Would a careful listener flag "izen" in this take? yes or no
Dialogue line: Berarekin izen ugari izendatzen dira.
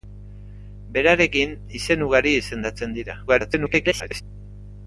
no